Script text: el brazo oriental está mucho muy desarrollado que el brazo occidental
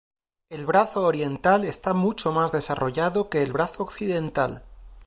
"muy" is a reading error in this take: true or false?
true